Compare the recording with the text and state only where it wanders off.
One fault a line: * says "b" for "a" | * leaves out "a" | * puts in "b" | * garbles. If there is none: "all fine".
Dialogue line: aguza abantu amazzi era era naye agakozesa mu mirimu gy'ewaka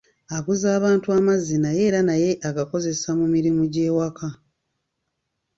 * says "naye" for "era"